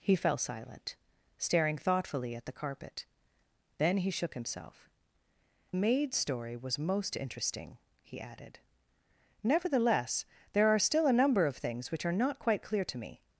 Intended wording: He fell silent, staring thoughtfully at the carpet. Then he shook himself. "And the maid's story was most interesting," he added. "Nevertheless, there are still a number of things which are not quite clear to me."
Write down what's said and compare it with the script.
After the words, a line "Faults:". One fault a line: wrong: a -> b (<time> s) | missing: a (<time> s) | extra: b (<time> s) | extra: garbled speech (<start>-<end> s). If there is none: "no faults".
He fell silent, staring thoughtfully at the carpet. Then he shook himself. "Maid's story was most interesting," he added. "Nevertheless, there are still a number of things which are not quite clear to me."
Faults:
missing: And the (4.9 s)